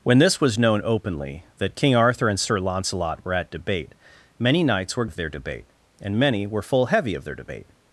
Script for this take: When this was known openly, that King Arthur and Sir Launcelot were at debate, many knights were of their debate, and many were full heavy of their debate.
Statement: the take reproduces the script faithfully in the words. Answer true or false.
true